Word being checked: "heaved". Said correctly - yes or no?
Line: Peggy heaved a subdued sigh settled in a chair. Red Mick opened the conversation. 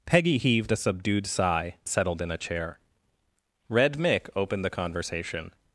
yes